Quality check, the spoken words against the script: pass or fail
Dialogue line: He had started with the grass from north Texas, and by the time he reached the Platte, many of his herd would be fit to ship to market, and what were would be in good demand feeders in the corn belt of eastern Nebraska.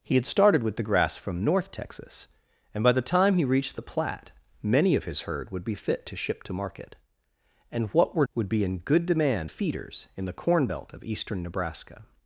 pass